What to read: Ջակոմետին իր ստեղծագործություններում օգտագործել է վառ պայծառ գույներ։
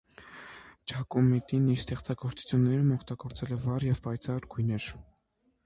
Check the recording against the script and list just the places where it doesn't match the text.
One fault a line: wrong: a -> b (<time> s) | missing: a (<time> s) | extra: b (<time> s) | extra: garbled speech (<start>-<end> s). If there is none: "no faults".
extra: և (3.9 s)